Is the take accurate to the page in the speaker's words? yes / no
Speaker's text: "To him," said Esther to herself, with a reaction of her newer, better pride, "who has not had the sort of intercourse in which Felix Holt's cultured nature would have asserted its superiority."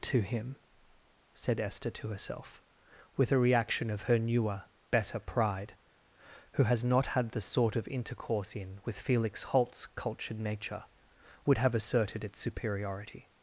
no